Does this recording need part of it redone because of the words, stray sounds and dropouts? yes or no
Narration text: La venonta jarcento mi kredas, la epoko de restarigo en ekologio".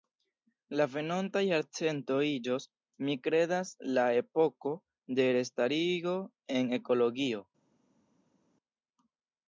yes